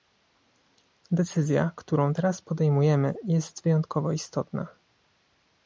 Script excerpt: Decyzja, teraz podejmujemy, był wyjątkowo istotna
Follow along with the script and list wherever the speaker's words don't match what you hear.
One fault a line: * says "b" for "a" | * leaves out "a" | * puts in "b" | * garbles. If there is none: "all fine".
* puts in "którą"
* says "jest" for "był"